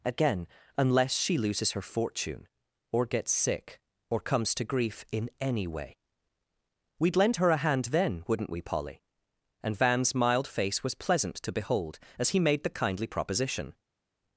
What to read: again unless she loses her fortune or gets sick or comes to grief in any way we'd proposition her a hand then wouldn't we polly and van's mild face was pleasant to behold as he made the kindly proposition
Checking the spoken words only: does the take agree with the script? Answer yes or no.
no